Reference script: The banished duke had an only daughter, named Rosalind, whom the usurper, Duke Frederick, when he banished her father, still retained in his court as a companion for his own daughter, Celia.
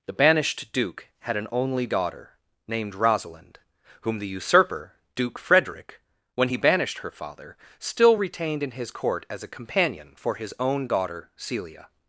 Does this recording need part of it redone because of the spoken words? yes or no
no